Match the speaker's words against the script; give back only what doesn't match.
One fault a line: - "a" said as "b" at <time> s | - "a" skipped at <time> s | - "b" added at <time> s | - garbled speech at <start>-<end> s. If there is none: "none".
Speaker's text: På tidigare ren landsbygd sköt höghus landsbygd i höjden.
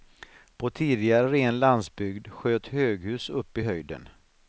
- "landsbygd" said as "upp" at 3.3 s